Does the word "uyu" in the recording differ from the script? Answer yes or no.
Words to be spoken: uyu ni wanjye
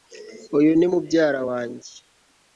no